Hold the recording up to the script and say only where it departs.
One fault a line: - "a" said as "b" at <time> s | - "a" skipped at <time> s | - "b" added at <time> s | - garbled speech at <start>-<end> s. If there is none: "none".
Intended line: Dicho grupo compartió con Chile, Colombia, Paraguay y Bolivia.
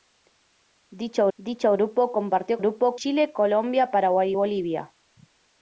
- "dicho" added at 1.4 s
- "con" said as "grupo" at 2.6 s